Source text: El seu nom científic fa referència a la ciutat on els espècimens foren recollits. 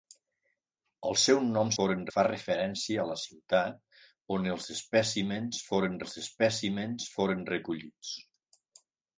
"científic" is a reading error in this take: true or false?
true